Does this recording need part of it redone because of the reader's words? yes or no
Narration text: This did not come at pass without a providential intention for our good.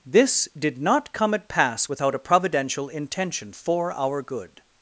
no